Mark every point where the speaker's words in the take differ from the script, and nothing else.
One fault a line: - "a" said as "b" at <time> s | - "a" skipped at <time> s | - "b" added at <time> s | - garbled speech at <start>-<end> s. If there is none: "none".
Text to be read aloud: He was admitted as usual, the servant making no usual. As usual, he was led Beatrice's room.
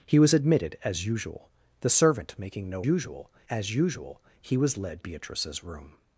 none